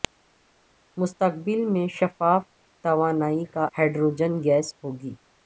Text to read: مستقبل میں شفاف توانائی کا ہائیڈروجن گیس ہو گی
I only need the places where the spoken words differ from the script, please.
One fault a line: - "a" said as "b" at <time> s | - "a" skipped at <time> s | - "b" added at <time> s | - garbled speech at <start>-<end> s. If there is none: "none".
none